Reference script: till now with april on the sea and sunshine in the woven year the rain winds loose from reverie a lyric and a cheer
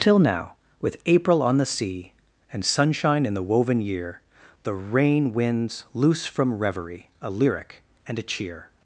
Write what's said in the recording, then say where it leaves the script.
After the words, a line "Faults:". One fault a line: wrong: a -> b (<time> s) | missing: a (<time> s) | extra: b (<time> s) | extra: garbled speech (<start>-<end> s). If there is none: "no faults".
till now with april on the sea and sunshine in the woven year the rain winds loose from reverie a lyric and a cheer
Faults:
no faults